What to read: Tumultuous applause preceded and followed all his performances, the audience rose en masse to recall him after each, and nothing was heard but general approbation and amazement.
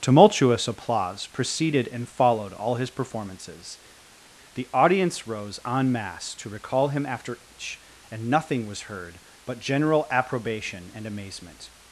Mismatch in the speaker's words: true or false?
false